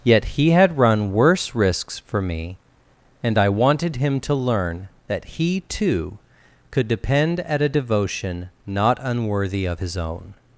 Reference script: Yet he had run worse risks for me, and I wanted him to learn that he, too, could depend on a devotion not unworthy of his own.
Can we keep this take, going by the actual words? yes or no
no